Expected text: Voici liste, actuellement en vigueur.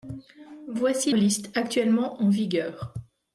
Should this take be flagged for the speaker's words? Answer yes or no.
no